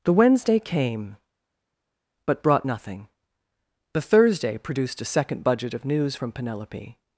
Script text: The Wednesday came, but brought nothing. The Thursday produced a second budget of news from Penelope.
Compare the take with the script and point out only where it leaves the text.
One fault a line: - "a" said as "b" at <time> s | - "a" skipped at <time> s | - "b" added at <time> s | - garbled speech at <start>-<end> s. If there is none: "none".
none